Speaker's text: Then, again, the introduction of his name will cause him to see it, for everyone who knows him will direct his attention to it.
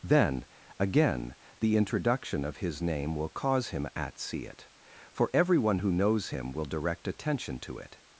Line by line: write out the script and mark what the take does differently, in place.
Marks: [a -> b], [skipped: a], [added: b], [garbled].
Then, again, the introduction of his name will cause him [to -> at] see it, for everyone who knows him will direct [skipped: his] attention to it.